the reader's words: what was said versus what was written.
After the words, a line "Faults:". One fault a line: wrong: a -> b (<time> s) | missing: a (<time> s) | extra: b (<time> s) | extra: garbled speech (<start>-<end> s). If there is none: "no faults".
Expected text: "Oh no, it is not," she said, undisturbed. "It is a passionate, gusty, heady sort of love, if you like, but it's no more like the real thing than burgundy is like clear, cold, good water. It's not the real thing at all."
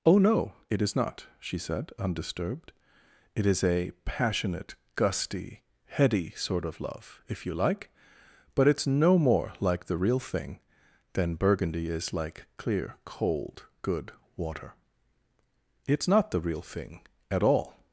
"Oh no, it is not," she said, undisturbed. "It is a passionate, gusty, heady sort of love, if you like, but it's no more like the real thing than burgundy is like clear, cold, good water. It's not the real thing at all."
Faults:
no faults